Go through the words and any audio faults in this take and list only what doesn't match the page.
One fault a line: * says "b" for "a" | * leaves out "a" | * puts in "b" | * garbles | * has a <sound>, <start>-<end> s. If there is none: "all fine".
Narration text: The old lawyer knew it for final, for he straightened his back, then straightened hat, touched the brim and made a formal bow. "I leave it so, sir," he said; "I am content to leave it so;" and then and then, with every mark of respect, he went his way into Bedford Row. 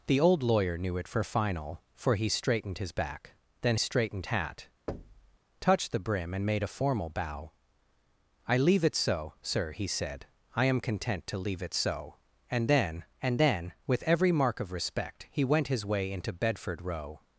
* has a thud, 4.9-5.4 s